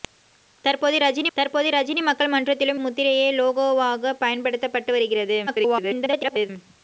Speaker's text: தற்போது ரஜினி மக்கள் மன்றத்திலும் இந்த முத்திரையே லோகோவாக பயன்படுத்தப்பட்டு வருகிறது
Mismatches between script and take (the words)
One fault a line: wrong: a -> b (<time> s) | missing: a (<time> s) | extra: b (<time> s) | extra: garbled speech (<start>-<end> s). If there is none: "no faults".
extra: தற்போது ரஜினி (1.4 s)
missing: இந்த (2.8 s)
extra: garbled speech (5.5-6.5 s)